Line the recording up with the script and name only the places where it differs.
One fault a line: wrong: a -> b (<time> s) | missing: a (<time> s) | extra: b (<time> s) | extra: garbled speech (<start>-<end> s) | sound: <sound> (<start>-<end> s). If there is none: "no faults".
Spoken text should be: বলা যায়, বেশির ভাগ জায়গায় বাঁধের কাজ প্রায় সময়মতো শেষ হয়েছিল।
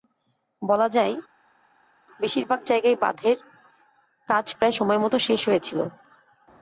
no faults